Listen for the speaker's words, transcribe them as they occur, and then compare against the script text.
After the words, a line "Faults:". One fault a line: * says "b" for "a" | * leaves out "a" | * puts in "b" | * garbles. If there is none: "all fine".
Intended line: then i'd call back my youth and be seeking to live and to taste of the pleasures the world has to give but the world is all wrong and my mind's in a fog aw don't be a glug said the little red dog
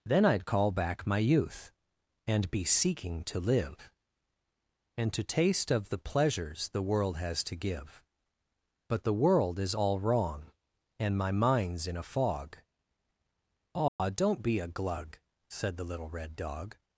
then i'd call back my youth and be seeking to live and to taste of the pleasures the world has to give but the world is all wrong and my mind's in a fog aw don't be a glug said the little red dog
Faults:
all fine